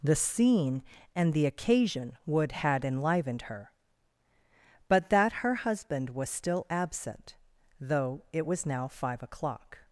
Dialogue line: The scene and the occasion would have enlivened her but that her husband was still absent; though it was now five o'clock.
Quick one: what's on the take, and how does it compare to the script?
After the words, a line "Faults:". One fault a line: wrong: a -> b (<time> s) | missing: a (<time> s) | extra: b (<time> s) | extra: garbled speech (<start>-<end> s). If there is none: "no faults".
The scene and the occasion would had enlivened her but that her husband was still absent; though it was now five o'clock.
Faults:
wrong: have -> had (2.5 s)